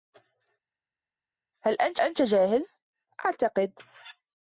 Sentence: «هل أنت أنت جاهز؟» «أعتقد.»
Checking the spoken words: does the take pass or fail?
pass